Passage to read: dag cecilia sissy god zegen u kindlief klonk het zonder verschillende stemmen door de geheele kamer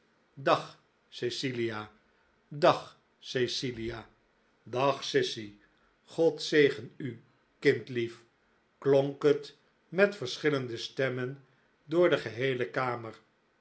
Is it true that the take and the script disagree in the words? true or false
true